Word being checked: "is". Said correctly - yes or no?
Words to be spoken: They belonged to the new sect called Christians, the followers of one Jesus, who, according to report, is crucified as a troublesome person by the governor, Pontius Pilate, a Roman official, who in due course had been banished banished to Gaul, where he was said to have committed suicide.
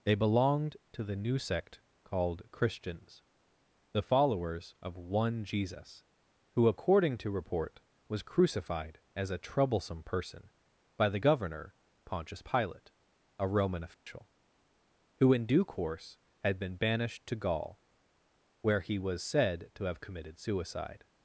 no